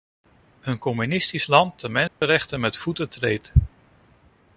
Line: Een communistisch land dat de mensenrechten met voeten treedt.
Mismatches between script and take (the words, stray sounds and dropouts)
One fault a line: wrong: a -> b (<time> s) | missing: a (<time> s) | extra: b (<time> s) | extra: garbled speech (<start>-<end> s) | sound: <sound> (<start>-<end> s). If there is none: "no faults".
missing: dat (1.8 s)
sound: dropout (2.1-2.2 s)